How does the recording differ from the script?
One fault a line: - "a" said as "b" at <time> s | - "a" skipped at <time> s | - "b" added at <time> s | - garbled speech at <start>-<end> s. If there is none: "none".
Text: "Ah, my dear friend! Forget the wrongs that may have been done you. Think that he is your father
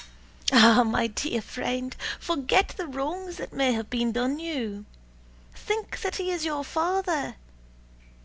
none